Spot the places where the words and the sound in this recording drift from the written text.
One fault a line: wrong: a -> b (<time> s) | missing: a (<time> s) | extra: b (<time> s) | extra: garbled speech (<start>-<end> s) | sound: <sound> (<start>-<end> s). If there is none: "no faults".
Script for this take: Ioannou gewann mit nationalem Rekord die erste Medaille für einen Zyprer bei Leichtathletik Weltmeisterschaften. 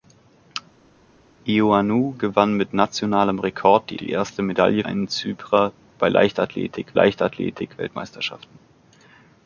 extra: die (4.0 s)
missing: für (4.8 s)
extra: Leichtathletik (6.9 s)